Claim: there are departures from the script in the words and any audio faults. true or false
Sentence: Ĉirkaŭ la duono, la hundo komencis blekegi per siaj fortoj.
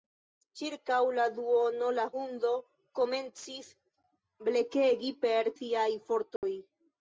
true